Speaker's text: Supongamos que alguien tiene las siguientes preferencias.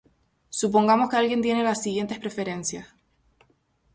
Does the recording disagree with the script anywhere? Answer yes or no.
no